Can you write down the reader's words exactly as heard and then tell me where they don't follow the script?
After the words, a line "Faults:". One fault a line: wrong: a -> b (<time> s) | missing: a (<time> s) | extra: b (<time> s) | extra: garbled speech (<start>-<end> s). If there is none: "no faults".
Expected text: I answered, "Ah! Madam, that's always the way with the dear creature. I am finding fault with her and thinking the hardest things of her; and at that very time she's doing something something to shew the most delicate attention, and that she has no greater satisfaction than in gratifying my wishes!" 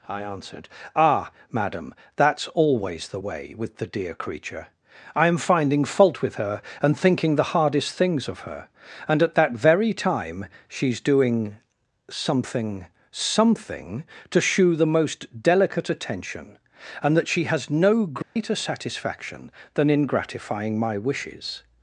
I answered, "Ah! Madam, that's always the way with the dear creature. I am finding fault with her and thinking the hardest things of her; and at that very time she's doing something something to shew the most delicate attention, and that she has no greater satisfaction than in gratifying my wishes!"
Faults:
no faults